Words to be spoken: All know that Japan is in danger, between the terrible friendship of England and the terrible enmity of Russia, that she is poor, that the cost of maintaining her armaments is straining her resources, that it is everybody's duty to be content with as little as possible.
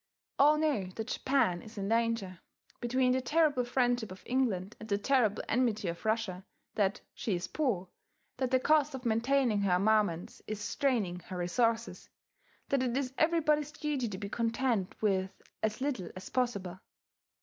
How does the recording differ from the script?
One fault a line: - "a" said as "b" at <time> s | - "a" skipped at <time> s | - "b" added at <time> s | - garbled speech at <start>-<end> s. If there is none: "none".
none